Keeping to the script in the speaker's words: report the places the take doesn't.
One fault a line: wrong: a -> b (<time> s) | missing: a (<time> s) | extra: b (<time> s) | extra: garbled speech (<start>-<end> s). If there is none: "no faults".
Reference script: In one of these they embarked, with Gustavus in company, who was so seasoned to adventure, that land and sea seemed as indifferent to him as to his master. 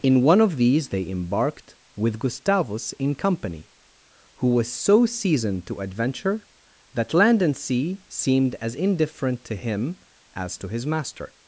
no faults